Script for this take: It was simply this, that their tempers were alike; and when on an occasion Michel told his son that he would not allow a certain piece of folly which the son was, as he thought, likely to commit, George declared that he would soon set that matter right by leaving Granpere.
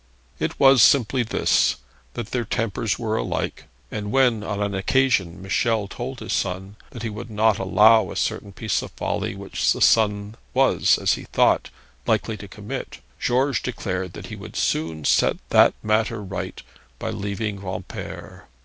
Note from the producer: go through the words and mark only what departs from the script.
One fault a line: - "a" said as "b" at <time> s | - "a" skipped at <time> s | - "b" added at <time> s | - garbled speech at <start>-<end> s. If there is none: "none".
none